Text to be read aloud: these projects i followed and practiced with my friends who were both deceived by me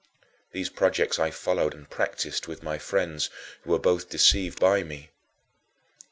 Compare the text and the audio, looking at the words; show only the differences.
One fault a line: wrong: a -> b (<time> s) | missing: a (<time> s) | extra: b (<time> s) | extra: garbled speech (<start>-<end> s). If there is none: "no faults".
no faults